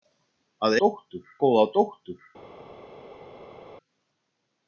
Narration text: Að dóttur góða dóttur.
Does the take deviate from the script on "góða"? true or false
false